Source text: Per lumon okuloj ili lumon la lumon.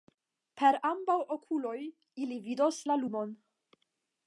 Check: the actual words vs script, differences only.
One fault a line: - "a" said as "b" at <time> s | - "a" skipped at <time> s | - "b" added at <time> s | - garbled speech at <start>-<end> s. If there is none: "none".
- "lumon" said as "ambaŭ" at 0.9 s
- "lumon" said as "vidos" at 2.5 s